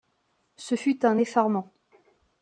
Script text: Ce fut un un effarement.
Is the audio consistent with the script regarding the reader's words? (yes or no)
no